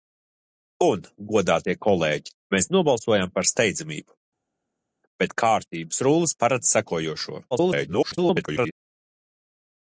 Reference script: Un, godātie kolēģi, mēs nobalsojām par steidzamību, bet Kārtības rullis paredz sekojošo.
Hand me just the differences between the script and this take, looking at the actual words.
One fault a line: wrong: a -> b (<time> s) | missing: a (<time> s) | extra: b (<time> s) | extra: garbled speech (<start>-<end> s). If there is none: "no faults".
extra: garbled speech (7.5-8.8 s)